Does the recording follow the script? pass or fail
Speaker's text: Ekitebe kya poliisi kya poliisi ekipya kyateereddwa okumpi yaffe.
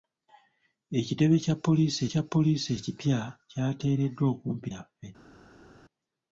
pass